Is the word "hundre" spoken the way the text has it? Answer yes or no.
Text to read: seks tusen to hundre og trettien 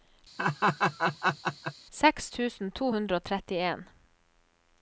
yes